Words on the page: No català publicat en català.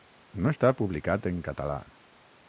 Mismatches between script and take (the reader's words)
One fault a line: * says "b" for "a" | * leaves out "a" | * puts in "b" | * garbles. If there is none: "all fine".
* says "està" for "català"